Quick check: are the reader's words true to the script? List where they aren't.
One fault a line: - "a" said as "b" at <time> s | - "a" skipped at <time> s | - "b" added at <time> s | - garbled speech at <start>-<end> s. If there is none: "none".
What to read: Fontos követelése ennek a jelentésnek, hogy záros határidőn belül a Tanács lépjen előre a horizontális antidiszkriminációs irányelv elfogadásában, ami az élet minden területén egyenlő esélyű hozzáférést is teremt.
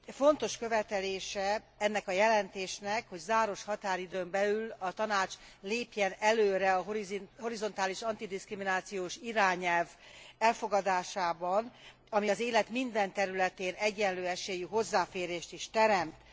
none